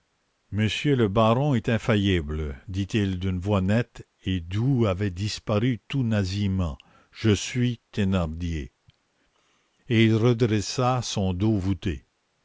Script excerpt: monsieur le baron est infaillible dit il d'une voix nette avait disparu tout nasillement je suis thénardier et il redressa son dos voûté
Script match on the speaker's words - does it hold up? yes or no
no